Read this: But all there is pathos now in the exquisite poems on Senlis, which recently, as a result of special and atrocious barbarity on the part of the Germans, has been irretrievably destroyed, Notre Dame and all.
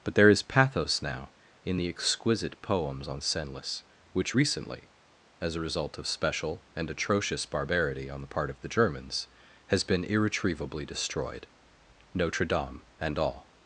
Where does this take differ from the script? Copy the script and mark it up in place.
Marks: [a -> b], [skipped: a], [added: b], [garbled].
But [skipped: all] there is pathos now in the exquisite poems on Senlis, which recently, as a result of special and atrocious barbarity on the part of the Germans, has been irretrievably destroyed, Notre Dame and all.